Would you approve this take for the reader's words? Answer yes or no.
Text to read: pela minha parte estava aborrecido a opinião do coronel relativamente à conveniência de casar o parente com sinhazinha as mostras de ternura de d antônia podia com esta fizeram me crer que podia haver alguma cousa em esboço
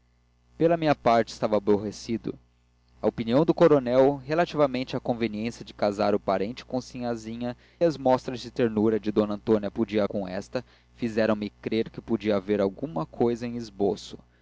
yes